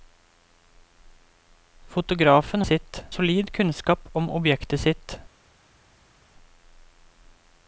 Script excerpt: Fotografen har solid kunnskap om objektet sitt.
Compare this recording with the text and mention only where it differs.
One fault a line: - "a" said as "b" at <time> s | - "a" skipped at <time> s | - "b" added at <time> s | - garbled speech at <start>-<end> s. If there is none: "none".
- "har" said as "sitt" at 2.6 s